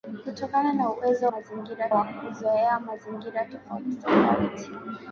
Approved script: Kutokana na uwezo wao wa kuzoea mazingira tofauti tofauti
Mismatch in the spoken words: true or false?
true